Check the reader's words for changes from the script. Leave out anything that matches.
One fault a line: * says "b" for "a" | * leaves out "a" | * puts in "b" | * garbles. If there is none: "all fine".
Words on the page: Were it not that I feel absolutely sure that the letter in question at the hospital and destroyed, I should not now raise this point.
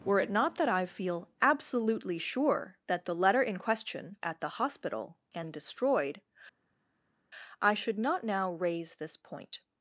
all fine